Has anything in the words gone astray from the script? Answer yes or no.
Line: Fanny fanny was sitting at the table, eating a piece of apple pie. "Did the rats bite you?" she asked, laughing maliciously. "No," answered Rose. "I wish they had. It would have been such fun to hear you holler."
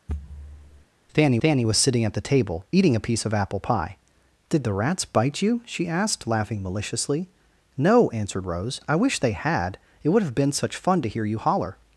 no